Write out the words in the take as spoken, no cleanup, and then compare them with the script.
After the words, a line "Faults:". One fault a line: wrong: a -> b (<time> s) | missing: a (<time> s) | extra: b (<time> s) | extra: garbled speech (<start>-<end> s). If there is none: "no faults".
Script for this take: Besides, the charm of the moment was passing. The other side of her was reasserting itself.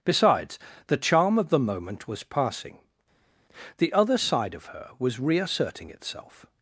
Besides, the charm of the moment was passing. The other side of her was reasserting itself.
Faults:
no faults